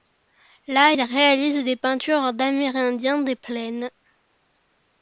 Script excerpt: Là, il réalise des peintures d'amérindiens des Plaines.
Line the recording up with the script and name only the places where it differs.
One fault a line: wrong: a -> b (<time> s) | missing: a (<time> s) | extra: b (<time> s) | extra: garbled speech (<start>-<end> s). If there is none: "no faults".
no faults